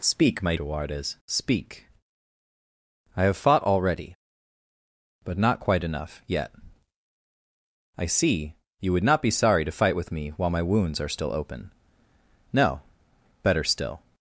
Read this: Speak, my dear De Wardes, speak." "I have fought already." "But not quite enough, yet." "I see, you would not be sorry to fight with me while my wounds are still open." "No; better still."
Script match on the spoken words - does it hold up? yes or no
no